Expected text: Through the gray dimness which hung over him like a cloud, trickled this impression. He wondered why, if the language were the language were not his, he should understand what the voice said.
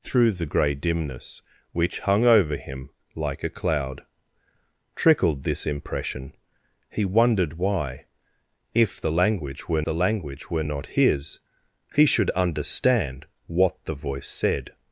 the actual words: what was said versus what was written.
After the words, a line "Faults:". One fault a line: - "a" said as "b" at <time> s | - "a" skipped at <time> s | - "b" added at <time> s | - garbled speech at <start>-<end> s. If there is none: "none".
Through the gray dimness which hung over him like a cloud, trickled this impression. He wondered why, if the language were the language were not his, he should understand what the voice said.
Faults:
none